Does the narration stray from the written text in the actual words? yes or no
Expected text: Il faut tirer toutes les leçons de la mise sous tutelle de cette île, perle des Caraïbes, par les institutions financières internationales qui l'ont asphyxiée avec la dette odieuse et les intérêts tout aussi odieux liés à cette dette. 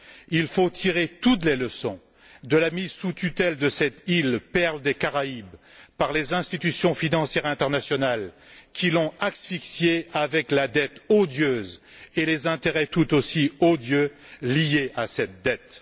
no